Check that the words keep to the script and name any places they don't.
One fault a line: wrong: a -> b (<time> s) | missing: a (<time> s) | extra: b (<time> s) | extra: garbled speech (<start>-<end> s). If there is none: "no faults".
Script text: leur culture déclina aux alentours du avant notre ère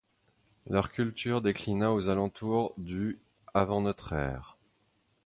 no faults